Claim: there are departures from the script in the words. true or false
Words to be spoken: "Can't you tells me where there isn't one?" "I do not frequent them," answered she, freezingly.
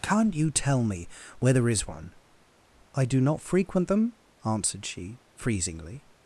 true